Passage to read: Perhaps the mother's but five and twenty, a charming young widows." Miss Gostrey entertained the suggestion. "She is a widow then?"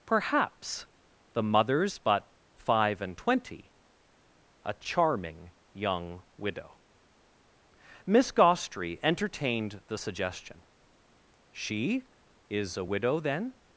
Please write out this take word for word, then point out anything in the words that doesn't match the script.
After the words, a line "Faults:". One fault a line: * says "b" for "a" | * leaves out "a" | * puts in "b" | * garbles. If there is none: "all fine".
Perhaps the mother's but five and twenty, a charming young widow." Miss Gostrey entertained the suggestion. "She is a widow then?"
Faults:
* says "widow" for "widows"